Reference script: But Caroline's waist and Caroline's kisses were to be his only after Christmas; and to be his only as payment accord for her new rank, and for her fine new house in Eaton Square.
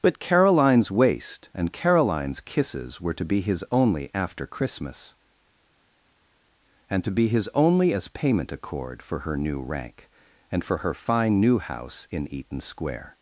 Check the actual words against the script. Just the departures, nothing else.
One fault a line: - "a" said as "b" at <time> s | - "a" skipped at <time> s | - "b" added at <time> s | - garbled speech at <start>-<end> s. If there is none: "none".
none